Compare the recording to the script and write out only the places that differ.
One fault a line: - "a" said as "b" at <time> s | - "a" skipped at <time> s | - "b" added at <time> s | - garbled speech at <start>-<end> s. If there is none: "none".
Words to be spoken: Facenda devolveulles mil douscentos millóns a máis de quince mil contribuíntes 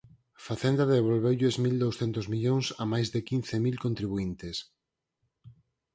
none